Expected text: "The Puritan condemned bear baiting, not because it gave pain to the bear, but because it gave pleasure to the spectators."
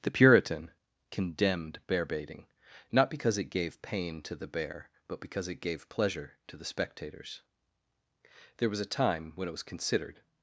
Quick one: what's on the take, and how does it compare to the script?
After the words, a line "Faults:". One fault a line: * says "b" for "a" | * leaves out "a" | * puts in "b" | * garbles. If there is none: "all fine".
"The Puritan condemned bear baiting, not because it gave pain to the bear, but because it gave pleasure to the spectators." There was a time when it was considered
Faults:
* puts in "There was a time when it was considered"